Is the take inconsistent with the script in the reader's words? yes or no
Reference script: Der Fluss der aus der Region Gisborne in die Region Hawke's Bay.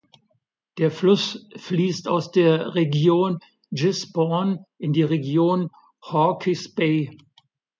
yes